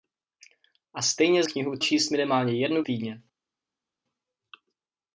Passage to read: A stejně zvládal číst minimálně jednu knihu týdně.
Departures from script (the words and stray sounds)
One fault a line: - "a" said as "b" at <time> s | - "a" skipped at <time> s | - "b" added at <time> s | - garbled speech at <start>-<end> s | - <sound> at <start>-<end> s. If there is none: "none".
- "zvládal" said as "knihu" at 1.4 s
- "knihu" skipped at 2.8 s